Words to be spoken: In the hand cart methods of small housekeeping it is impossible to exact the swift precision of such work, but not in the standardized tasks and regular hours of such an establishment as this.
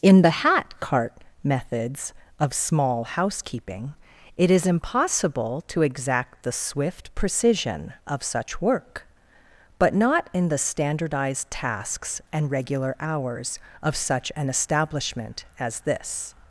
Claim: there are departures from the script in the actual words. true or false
true